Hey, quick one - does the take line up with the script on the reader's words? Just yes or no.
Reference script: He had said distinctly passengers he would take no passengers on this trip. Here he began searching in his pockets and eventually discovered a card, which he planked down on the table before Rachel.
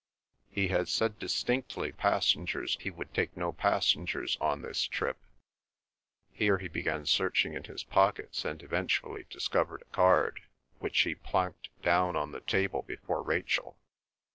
yes